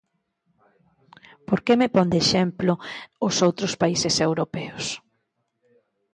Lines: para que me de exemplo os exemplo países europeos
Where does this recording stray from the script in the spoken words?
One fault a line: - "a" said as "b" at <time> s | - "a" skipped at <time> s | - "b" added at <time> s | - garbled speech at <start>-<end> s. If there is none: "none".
- "para" said as "por" at 1.5 s
- "pon" added at 1.9 s
- "exemplo" said as "outros" at 3.5 s